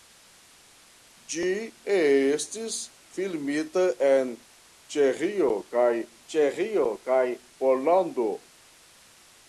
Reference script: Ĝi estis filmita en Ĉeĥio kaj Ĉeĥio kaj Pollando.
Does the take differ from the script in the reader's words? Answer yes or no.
no